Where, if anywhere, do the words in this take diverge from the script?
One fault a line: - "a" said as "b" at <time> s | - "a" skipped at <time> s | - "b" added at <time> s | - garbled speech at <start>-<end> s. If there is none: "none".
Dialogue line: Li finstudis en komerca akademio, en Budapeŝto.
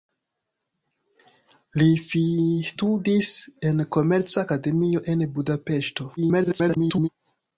- garbled speech at 6.2-7.1 s